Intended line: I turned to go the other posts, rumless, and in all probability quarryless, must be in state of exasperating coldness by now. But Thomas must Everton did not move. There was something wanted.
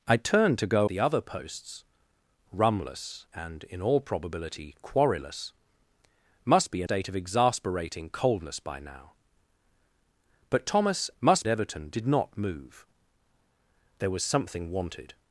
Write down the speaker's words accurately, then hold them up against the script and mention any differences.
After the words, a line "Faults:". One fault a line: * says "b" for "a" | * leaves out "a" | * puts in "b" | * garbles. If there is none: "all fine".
I turned to go the other posts, rumless, and in all probability quarryless, must be in state of exasperating coldness by now. But Thomas must Everton did not move. There was something wanted.
Faults:
all fine